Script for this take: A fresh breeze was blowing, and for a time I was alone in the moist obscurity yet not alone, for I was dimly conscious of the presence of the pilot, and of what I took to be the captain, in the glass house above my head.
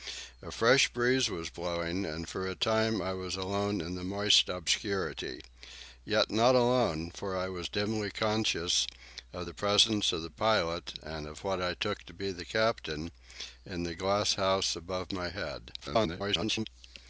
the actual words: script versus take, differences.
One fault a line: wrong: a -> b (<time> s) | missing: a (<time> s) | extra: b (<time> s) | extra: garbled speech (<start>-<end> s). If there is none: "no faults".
extra: garbled speech (15.8-16.7 s)